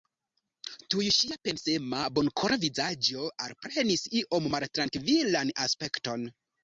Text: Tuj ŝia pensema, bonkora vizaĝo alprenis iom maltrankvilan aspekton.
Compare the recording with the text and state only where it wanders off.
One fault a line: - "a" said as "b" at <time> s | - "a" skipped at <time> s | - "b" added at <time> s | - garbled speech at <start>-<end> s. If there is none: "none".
none